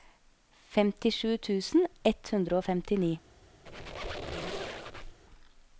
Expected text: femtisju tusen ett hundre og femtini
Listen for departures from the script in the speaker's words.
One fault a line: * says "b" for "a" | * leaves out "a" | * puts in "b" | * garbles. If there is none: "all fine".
all fine